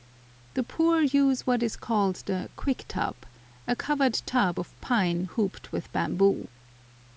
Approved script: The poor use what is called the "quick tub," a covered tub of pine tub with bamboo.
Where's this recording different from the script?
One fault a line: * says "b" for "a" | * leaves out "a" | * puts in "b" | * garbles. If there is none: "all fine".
* says "hooped" for "tub"